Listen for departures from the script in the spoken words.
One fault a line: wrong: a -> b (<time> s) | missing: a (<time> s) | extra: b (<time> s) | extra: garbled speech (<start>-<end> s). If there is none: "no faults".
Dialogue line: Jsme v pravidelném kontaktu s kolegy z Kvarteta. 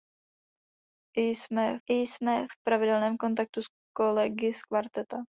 extra: jsme (1.9 s)